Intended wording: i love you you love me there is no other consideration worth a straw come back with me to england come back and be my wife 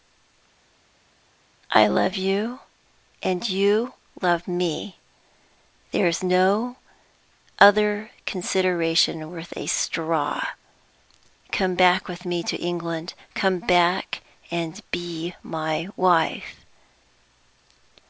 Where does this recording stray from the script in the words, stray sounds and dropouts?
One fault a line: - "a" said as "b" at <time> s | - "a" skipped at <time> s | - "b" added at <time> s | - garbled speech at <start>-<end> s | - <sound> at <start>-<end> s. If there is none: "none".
- "and" added at 3.2 s